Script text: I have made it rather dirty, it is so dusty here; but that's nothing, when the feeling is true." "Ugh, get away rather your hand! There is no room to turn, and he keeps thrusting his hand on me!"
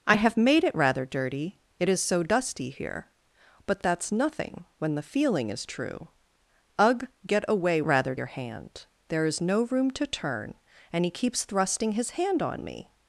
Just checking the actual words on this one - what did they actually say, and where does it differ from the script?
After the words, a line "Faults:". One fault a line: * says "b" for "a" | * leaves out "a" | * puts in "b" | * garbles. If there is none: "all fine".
I have made it rather dirty, it is so dusty here; but that's nothing, when the feeling is true." "Ugh, get away rather your hand! There is no room to turn, and he keeps thrusting his hand on me!"
Faults:
all fine